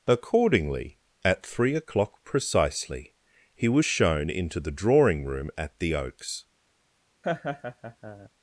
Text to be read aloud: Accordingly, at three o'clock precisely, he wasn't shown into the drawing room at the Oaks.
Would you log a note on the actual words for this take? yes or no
yes